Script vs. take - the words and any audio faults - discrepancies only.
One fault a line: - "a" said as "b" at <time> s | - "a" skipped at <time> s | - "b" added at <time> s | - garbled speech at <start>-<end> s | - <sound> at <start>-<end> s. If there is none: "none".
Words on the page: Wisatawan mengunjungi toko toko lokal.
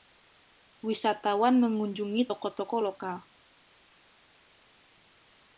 none